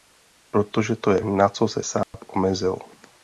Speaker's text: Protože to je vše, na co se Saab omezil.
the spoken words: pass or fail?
fail